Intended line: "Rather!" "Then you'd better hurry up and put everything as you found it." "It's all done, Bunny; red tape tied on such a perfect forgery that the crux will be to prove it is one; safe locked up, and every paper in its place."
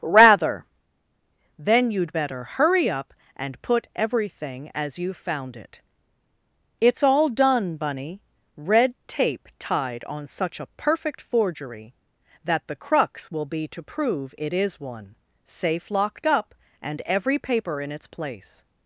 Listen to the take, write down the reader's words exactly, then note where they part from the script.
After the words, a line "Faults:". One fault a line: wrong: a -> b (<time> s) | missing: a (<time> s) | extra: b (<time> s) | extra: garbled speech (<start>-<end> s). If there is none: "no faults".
"Rather!" "Then you'd better hurry up and put everything as you found it." "It's all done, Bunny; red tape tied on such a perfect forgery that the crux will be to prove it is one; safe locked up, and every paper in its place."
Faults:
no faults